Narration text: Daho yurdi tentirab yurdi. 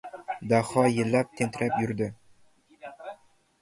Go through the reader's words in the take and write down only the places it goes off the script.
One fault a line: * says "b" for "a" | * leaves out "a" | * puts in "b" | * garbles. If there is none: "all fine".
* says "yillab" for "yurdi"